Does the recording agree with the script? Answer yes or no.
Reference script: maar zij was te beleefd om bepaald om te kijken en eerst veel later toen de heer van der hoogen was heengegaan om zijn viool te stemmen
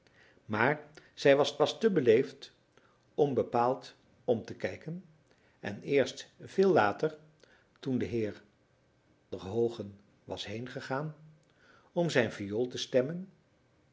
no